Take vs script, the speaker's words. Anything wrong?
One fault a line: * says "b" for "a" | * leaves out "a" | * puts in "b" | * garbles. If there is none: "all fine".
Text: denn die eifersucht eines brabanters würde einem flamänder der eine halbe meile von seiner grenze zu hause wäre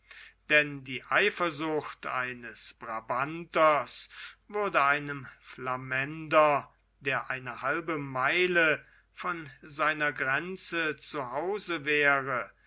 all fine